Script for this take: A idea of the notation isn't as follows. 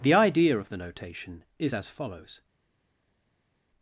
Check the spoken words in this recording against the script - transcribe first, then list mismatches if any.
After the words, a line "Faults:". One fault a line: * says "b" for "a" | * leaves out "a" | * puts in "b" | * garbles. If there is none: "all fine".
The idea of the notation is as follows.
Faults:
* says "The" for "A"
* says "is" for "isn't"